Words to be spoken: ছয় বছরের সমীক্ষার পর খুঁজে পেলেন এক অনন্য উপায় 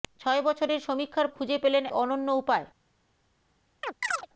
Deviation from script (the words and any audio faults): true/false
true